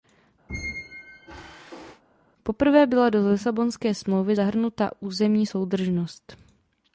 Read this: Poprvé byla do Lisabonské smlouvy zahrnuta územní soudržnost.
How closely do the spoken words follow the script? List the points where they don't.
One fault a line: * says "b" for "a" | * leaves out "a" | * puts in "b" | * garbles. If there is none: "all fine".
all fine